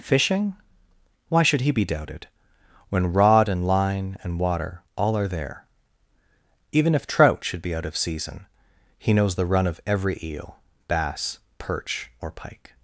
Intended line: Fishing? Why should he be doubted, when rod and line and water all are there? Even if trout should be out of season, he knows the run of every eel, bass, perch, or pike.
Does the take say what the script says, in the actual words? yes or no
yes